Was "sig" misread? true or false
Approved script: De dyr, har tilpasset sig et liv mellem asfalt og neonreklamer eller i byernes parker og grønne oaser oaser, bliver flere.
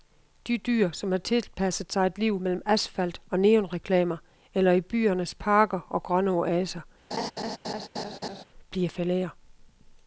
false